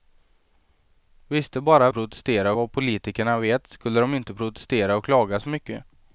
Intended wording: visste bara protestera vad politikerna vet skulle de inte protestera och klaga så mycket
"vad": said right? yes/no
yes